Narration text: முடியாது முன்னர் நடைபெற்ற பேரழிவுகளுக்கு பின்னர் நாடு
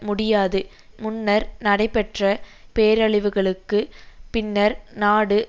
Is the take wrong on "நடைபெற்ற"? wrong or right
right